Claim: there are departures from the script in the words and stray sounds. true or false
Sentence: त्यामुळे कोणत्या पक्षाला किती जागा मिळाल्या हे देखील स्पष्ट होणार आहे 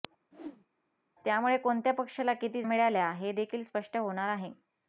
true